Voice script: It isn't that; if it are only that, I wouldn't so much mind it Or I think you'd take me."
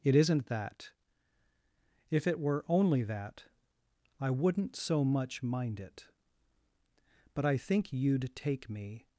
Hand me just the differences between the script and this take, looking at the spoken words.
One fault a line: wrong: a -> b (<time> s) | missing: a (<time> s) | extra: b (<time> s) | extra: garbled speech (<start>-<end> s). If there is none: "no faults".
wrong: are -> were (2.4 s)
wrong: Or -> But (7.3 s)